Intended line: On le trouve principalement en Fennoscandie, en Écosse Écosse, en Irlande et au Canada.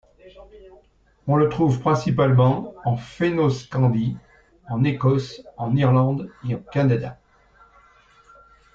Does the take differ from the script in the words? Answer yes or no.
yes